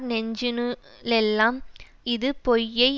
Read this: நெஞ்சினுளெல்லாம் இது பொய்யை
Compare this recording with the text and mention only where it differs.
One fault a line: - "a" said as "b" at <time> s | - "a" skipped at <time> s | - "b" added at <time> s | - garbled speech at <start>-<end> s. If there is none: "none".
none